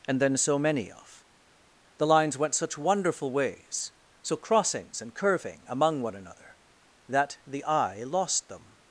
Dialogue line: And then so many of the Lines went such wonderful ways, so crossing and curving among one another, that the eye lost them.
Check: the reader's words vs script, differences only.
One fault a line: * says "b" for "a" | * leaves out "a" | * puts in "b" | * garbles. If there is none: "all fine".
* says "crossings" for "crossing"